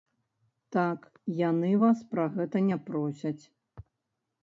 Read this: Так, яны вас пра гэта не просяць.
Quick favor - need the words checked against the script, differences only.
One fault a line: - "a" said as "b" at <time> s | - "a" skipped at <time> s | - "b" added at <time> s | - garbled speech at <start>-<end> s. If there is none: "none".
none